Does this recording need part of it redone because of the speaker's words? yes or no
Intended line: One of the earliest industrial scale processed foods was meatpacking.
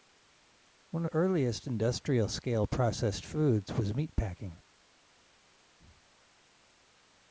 yes